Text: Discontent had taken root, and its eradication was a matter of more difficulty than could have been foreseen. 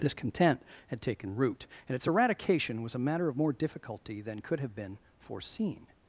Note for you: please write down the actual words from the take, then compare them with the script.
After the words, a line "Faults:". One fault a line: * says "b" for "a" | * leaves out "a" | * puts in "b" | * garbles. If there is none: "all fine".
Discontent had taken root, and its eradication was a matter of more difficulty than could have been foreseen.
Faults:
all fine